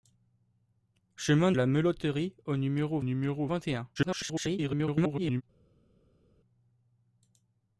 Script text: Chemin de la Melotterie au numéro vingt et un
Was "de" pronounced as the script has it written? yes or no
no